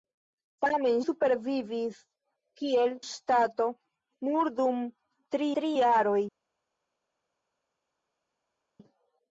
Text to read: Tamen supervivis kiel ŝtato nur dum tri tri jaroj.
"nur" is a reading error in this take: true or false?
false